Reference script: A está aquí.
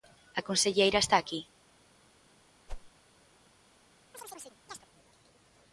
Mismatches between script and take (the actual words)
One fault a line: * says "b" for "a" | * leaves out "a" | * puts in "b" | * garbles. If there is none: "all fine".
* puts in "conselleira"